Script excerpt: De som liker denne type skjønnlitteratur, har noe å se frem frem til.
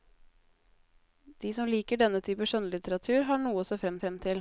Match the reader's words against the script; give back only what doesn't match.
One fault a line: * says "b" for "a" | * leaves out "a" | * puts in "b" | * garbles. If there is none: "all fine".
all fine